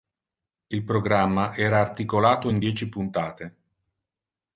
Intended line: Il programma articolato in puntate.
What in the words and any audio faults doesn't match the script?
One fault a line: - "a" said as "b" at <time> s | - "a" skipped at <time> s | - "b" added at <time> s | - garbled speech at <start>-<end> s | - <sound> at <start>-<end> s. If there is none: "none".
- "era" added at 1.6 s
- "dieci" added at 2.6 s